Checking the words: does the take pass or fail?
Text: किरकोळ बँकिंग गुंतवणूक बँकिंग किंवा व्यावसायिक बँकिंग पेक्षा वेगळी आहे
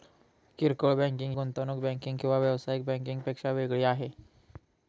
pass